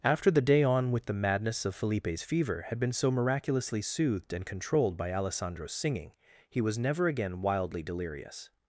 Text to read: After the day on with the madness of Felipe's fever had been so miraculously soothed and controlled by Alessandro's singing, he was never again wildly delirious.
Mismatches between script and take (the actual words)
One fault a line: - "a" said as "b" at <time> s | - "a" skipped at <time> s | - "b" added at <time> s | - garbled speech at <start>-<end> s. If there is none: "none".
none